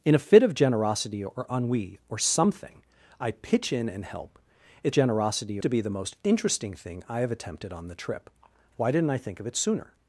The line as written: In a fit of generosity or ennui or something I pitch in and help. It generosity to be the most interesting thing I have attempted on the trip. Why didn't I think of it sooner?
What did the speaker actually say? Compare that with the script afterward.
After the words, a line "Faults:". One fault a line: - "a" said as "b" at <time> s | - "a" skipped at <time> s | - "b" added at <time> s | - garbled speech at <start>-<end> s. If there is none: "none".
In a fit of generosity or ennui or something I pitch in and help. It generosity to be the most interesting thing I have attempted on the trip. Why didn't I think of it sooner?
Faults:
none